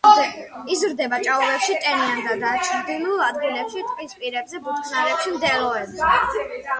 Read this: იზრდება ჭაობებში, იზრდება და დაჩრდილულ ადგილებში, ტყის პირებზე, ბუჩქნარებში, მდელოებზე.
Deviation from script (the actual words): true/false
true